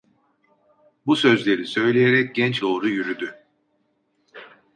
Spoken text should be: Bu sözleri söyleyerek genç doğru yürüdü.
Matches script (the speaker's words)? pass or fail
pass